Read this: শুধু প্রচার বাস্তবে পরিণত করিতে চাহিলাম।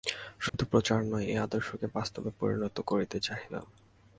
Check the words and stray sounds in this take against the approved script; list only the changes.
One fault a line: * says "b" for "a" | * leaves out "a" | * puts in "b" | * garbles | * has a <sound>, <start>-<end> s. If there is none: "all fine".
* has a dropout, 0.5-0.5 s
* puts in "নয় এই আদর্শকে"